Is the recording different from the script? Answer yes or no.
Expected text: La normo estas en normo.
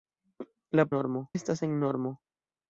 no